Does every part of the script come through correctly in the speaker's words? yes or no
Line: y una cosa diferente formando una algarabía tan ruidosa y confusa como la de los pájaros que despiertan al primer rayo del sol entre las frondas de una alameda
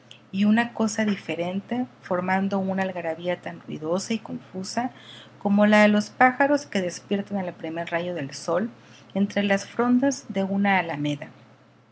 yes